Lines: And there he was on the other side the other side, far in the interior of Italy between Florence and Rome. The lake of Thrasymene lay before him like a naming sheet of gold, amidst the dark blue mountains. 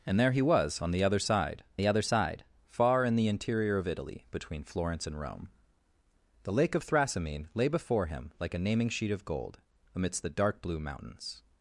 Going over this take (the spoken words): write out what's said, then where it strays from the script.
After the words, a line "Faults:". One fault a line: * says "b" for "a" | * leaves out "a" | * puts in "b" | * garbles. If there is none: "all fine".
And there he was on the other side the other side, far in the interior of Italy between Florence and Rome. The lake of Thrasymene lay before him like a naming sheet of gold, amidst the dark blue mountains.
Faults:
all fine